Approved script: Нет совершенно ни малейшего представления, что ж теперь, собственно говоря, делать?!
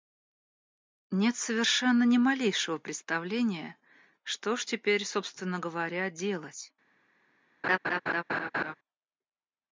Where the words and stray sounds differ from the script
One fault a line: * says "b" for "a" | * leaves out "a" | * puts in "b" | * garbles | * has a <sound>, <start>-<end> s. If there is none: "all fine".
* has a laugh, 7.6-8.7 s